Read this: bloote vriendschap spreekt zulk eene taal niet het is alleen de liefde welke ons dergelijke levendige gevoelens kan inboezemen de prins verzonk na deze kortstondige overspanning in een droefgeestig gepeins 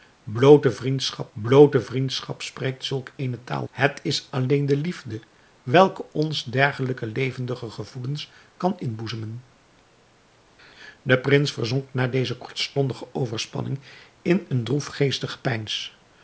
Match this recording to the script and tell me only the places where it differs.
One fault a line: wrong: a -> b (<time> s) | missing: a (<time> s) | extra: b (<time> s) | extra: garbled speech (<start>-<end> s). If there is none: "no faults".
extra: bloote vriendschap (1.3 s)
missing: niet (3.7 s)